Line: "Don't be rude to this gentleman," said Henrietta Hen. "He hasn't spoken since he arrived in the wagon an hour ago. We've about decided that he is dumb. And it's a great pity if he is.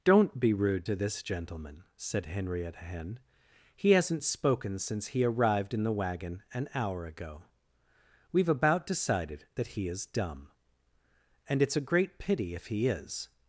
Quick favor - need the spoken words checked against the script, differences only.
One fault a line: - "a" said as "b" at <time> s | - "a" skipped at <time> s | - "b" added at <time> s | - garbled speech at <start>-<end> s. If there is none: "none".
none